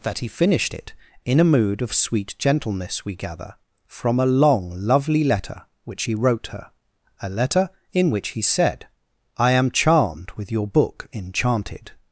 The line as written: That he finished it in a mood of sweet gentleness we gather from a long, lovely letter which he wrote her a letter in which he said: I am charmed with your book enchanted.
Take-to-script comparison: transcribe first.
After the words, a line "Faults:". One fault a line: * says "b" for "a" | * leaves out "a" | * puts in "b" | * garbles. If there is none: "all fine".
That he finished it in a mood of sweet gentleness we gather from a long, lovely letter which he wrote her a letter in which he said: I am charmed with your book enchanted.
Faults:
all fine